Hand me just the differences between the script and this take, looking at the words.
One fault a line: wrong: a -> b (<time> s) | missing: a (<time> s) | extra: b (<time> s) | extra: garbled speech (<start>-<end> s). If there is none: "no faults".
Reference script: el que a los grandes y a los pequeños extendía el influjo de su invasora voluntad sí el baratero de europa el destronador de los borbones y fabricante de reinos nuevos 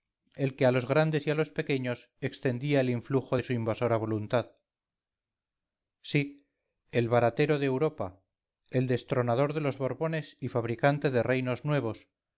no faults